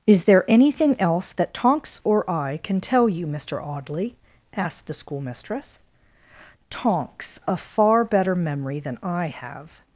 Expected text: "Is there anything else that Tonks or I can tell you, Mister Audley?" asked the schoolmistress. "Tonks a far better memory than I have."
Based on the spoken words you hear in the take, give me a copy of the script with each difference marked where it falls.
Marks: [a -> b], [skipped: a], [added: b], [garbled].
"Is there anything else that Tonks or I can tell you, Mister Audley?" asked the schoolmistress. "Tonks a far better memory than I have."